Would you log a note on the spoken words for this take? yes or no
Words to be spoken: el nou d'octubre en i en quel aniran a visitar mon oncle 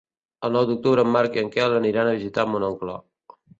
yes